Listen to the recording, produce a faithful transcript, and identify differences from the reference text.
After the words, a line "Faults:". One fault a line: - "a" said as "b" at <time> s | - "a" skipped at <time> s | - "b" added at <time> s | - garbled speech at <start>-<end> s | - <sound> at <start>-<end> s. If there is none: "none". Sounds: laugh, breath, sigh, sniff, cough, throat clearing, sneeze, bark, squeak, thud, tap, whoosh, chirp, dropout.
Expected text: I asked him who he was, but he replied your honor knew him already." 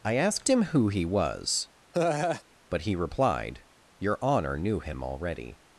I asked him who he was, but he replied your honor knew him already."
Faults:
- laugh at 1.9-2.4 s